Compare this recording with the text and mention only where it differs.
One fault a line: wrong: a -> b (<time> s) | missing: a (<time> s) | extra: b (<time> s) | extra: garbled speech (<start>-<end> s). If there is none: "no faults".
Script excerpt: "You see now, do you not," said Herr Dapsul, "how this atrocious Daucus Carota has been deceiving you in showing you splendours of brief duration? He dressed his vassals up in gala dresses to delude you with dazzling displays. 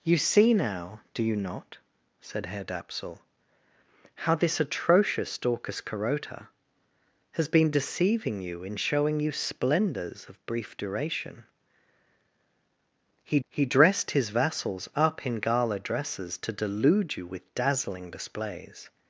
extra: he (13.5 s)